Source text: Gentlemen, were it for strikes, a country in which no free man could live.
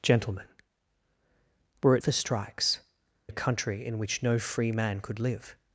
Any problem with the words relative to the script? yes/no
no